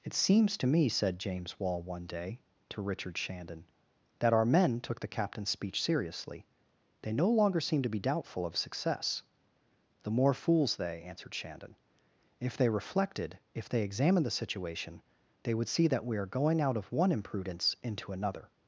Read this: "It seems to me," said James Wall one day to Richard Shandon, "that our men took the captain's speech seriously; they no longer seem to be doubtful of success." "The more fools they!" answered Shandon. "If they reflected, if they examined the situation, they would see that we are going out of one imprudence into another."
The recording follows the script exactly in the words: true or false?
true